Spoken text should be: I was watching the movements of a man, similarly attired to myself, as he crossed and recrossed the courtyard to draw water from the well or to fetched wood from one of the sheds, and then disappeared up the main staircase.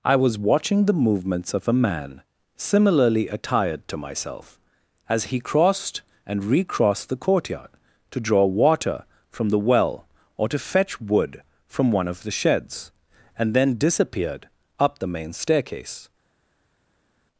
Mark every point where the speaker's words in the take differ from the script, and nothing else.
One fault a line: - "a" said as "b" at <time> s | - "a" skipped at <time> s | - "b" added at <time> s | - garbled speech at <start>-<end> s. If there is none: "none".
- "fetched" said as "fetch" at 10.6 s